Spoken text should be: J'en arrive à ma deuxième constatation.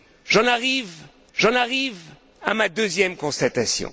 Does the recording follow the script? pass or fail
fail